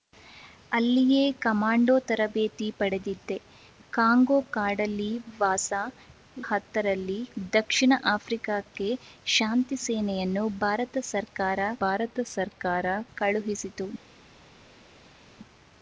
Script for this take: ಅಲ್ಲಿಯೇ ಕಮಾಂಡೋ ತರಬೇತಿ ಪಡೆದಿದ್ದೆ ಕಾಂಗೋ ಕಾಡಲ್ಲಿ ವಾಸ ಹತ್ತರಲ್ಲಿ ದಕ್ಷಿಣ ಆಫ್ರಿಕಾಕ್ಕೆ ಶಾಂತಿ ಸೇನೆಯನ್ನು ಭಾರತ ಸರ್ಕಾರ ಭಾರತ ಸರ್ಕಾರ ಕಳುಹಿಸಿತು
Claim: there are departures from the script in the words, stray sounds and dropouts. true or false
false